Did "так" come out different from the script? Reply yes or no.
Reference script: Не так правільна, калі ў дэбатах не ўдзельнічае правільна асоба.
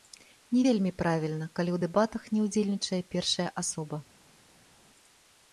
yes